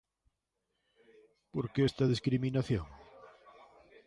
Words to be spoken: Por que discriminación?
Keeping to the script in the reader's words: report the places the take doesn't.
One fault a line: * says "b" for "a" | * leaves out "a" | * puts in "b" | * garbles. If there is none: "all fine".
* puts in "esta"